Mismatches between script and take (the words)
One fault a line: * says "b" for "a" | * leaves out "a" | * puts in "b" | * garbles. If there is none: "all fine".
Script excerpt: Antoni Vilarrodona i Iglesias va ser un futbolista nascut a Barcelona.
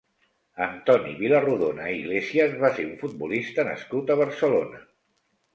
all fine